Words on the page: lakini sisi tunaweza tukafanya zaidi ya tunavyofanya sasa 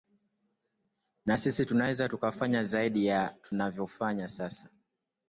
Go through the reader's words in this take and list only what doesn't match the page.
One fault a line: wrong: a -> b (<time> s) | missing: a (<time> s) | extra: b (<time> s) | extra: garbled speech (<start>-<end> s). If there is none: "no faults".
wrong: lakini -> na (1.2 s)